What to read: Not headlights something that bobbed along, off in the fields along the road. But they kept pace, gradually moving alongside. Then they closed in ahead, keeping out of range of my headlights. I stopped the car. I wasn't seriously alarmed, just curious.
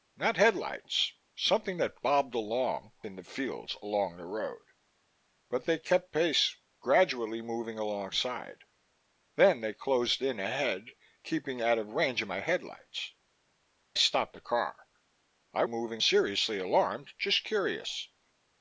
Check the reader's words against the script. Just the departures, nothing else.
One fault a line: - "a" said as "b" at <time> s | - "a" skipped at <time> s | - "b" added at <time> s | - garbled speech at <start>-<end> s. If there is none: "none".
- "off" skipped at 2.9 s
- "I" skipped at 13.1 s
- "wasn't" said as "moving" at 15.6 s